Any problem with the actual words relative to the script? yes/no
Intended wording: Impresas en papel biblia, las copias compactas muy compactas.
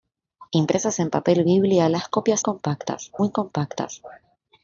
no